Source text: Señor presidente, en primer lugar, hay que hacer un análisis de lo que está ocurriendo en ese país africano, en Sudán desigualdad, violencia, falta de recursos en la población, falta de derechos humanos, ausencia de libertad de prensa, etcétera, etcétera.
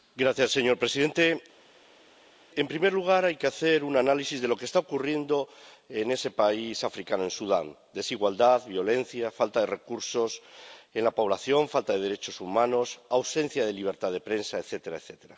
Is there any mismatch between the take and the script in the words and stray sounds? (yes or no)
no